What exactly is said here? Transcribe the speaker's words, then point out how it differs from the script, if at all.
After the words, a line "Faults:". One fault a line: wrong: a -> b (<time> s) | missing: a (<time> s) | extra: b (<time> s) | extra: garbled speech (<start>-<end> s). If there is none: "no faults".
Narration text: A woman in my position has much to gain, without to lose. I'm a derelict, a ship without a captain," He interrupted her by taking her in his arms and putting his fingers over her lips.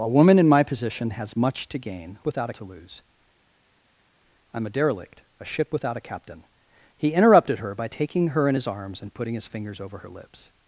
A woman in my position has much to gain, without to lose. I'm a derelict, a ship without a captain," He interrupted her by taking her in his arms and putting his fingers over her lips.
Faults:
no faults